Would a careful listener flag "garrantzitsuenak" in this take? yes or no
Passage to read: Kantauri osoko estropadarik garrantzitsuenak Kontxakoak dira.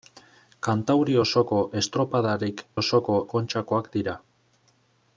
yes